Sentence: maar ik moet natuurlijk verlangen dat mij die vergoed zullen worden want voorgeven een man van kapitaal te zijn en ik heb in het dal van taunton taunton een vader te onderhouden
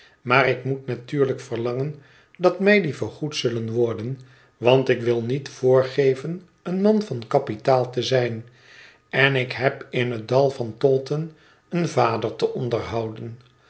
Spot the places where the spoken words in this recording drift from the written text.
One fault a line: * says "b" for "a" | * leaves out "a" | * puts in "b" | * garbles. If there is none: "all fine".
* puts in "ik wil niet"
* leaves out "taunton"